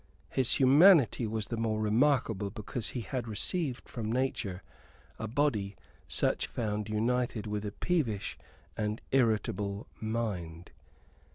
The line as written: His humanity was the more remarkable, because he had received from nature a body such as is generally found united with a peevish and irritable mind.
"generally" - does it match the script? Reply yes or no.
no